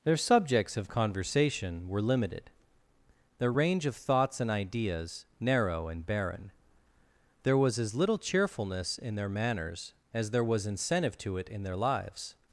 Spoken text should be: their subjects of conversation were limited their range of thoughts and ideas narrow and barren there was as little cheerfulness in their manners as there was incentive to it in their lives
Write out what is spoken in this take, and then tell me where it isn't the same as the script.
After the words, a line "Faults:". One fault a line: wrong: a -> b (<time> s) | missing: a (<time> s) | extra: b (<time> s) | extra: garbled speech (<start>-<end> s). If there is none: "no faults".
their subjects of conversation were limited their range of thoughts and ideas narrow and barren there was as little cheerfulness in their manners as there was incentive to it in their lives
Faults:
no faults